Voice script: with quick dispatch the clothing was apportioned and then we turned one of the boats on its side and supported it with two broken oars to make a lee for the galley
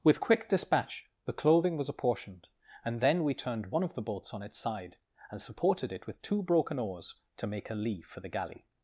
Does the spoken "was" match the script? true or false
true